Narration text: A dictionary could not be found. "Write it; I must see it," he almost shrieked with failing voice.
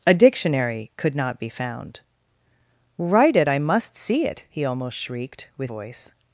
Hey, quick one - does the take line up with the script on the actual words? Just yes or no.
no